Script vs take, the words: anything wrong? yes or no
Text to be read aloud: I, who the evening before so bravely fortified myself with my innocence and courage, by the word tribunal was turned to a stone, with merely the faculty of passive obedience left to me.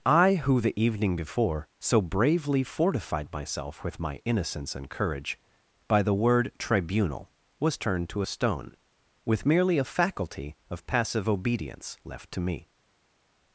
yes